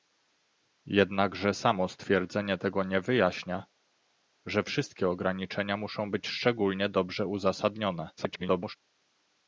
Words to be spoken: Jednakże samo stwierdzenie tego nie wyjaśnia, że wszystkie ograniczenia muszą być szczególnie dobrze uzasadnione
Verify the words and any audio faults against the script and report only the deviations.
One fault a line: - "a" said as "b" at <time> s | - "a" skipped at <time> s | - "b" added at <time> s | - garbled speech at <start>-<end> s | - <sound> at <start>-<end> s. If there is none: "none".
- garbled speech at 8.2-8.8 s